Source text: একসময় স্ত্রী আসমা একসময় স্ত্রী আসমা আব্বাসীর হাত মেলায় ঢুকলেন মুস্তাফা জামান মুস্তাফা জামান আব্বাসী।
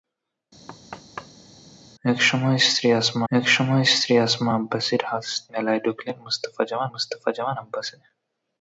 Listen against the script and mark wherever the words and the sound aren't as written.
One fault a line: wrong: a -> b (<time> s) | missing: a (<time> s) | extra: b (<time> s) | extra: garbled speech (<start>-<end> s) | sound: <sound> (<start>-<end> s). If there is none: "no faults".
sound: thud (0.7-1.6 s)